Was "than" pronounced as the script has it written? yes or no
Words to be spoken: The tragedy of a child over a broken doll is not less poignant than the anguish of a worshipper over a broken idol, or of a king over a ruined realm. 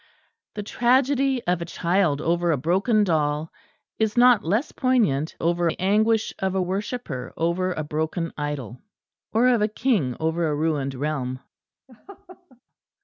no